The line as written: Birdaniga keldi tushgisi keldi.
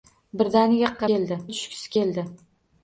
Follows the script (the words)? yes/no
yes